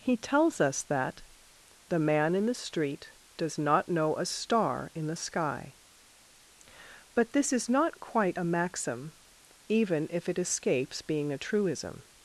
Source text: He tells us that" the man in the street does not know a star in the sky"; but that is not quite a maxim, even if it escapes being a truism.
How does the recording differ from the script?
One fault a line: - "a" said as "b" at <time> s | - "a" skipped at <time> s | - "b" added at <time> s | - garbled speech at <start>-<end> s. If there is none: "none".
- "that" said as "this" at 7.3 s